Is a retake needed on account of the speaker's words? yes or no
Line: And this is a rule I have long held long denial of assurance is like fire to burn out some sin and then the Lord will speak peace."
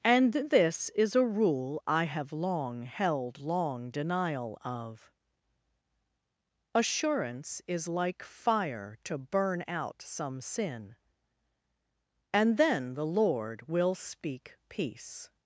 no